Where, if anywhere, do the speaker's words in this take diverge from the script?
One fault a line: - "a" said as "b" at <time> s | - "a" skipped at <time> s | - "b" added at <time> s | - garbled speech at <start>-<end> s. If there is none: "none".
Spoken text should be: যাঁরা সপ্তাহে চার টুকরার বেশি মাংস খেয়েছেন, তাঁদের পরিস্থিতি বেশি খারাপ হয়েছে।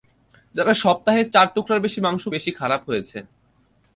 - "খেয়েছেন তাঁদের পরিস্থিতি" skipped at 2.2 s